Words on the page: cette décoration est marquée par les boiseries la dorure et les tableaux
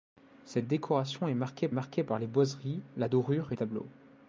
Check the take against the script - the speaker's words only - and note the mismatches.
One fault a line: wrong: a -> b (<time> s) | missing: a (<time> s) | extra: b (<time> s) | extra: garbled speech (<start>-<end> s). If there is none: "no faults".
extra: marquée (1.7 s)
missing: les (3.6 s)